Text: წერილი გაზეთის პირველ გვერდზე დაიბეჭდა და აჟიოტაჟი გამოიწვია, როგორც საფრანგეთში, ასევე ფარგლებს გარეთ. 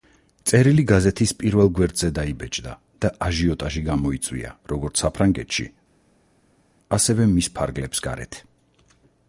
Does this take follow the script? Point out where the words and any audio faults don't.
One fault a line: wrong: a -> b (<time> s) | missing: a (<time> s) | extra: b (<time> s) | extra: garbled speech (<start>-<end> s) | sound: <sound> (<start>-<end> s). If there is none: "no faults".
extra: მის (7.3 s)